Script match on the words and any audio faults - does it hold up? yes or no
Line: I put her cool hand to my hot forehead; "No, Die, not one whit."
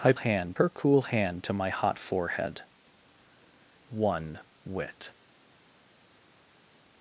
no